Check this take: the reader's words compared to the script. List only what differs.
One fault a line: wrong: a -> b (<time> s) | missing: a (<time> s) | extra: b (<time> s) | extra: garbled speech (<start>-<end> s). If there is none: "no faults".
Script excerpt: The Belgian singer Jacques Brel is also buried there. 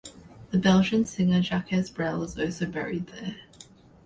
no faults